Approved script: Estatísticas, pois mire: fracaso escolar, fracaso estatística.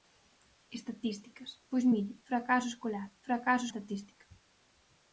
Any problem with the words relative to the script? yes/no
no